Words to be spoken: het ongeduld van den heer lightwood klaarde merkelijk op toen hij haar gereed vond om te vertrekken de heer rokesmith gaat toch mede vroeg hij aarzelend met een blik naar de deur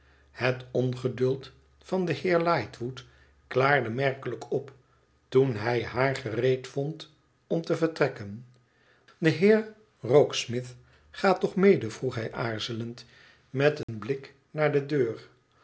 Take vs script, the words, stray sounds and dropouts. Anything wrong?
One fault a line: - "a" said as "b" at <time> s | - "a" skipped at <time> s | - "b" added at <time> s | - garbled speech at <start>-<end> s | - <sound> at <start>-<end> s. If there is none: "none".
- dropout at 13.8-13.9 s